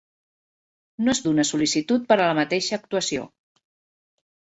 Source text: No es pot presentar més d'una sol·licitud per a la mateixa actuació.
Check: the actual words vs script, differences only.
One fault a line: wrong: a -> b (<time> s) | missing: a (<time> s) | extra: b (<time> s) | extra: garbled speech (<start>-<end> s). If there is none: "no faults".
missing: pot presentar més (1.2 s)